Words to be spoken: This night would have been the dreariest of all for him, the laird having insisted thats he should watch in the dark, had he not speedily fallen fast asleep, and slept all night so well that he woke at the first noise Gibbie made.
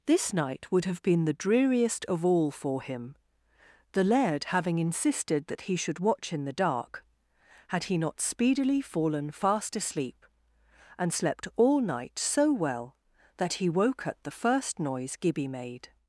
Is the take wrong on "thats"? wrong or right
wrong